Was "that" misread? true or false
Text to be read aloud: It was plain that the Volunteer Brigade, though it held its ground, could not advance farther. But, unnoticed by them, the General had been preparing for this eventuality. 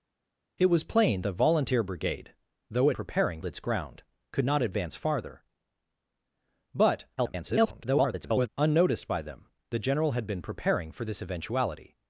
true